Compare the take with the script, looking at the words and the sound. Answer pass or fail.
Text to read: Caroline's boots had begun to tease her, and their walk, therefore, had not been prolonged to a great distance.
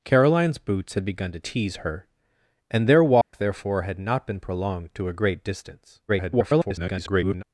fail